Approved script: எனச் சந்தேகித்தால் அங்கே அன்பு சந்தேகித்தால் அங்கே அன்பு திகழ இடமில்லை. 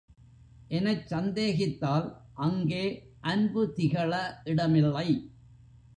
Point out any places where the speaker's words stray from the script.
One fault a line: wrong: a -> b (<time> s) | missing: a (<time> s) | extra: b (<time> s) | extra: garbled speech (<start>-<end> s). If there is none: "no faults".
missing: சந்தேகித்தால் அங்கே அன்பு (3.7 s)